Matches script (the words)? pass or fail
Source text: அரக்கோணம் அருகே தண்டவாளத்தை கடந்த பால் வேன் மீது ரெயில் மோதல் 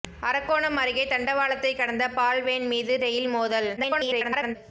fail